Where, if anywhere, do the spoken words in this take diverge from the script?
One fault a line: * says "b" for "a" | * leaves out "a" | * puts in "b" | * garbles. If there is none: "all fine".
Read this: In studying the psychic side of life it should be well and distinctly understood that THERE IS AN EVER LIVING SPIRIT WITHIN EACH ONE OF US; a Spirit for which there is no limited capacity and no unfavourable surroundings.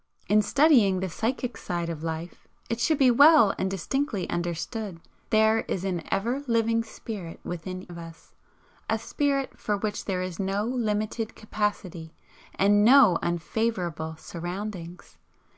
* leaves out "that"
* leaves out "EACH ONE"